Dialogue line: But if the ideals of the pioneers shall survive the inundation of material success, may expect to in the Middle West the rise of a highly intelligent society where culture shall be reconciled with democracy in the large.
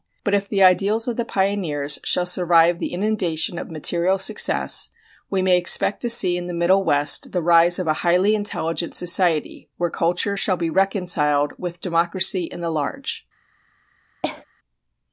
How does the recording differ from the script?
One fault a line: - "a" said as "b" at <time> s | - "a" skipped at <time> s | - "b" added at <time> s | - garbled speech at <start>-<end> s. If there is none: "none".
- "we" added at 5.3 s
- "see" added at 6.1 s